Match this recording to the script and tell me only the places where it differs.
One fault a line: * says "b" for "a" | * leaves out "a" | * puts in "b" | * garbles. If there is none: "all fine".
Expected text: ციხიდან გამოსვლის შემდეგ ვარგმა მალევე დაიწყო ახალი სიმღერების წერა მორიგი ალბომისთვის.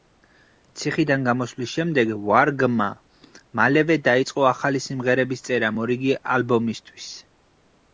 all fine